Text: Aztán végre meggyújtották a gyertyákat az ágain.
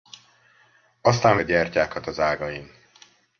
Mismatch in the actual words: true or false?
true